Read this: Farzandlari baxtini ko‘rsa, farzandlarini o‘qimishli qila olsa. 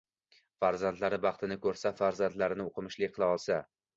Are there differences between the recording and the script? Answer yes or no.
no